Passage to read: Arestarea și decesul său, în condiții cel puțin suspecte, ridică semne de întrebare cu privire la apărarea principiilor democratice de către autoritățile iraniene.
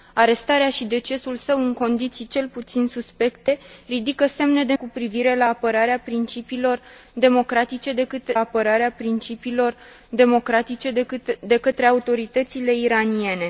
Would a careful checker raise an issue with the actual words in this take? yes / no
yes